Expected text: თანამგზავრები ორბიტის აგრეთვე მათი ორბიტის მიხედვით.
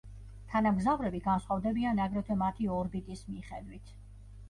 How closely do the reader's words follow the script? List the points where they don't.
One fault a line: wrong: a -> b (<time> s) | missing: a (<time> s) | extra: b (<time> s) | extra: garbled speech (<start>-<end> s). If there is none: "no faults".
wrong: ორბიტის -> განსხვავდებიან (1.3 s)